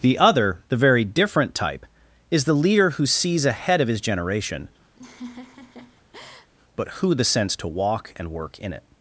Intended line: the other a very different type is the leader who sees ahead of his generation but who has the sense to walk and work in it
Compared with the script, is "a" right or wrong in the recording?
wrong